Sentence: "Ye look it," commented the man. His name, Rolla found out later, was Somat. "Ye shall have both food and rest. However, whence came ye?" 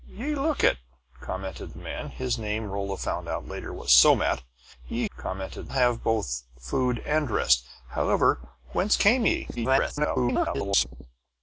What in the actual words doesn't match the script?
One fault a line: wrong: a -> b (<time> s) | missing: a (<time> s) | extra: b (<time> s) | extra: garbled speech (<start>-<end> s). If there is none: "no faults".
wrong: shall -> commented (5.2 s)
extra: garbled speech (9.6-10.9 s)